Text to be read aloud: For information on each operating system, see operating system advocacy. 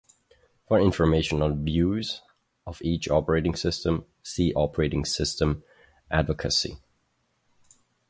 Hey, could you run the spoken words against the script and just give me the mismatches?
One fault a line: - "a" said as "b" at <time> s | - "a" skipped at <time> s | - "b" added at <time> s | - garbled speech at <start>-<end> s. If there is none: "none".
- "views of" added at 1.6 s